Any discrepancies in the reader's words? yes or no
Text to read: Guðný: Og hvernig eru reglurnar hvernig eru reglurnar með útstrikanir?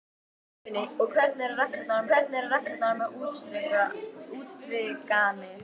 no